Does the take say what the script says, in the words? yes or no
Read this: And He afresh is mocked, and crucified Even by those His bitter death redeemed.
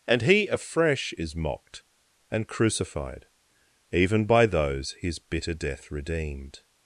yes